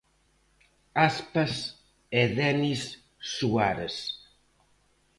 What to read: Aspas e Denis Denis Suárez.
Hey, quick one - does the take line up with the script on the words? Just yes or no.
no